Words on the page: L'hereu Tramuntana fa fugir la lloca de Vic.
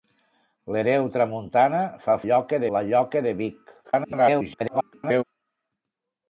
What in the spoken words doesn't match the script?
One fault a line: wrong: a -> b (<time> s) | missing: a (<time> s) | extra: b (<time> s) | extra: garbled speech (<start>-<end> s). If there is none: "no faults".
wrong: fugir -> lloca (2.3 s)
extra: garbled speech (3.8-5.2 s)